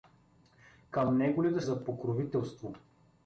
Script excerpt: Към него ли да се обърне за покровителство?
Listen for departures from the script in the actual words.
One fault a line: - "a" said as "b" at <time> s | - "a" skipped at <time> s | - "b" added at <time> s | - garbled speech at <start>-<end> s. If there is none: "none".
- "се обърне" skipped at 1.6 s